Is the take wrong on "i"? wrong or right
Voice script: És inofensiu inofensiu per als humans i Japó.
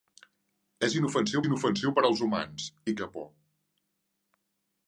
right